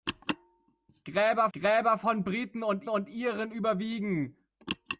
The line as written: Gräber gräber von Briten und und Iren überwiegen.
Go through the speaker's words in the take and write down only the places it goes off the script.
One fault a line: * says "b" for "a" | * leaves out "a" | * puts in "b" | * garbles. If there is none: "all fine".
all fine